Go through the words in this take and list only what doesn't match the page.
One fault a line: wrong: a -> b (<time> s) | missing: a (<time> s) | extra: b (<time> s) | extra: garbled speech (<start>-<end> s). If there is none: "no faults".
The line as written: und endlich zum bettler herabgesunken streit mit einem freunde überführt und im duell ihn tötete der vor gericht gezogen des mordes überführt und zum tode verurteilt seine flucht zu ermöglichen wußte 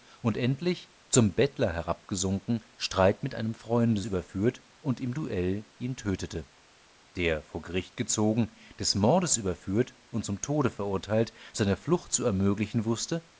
no faults